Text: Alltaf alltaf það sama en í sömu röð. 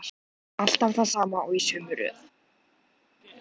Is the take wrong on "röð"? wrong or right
right